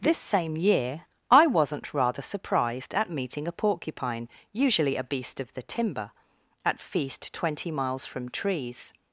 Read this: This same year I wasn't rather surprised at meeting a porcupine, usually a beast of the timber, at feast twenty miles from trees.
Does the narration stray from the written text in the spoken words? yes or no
no